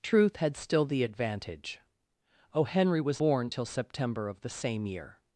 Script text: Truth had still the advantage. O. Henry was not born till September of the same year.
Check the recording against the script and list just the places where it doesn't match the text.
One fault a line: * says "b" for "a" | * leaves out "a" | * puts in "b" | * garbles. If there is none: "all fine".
* leaves out "not"